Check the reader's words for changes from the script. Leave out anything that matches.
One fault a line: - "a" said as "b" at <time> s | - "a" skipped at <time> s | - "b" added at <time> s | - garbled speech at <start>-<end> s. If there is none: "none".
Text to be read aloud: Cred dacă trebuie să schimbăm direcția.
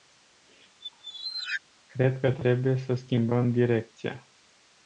- "dacă" said as "că" at 2.2 s